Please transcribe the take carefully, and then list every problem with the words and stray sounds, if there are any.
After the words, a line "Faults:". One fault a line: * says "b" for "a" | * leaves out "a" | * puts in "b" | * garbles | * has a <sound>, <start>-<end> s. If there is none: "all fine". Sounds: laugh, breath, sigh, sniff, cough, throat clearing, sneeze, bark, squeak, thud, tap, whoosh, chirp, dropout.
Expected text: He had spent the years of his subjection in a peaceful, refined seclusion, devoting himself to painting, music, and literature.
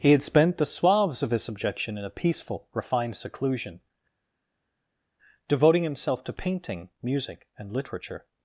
He had spent the suaves of his subjection in a peaceful, refined seclusion, devoting himself to painting, music, and literature.
Faults:
* says "suaves" for "years"